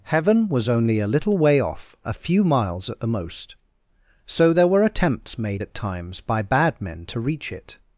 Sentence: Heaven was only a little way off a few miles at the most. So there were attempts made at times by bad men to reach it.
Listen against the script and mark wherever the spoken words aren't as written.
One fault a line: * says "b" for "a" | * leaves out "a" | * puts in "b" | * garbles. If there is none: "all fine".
all fine